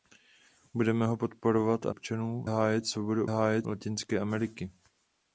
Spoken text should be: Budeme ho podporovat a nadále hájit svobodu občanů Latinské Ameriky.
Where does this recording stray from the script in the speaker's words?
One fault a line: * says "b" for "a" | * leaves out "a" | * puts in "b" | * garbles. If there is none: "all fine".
* says "občanů" for "nadále"
* says "hájit" for "občanů"